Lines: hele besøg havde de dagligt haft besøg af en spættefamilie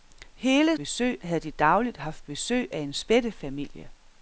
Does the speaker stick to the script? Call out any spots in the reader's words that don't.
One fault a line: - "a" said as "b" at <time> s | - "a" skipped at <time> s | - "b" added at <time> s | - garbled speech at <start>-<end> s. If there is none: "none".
none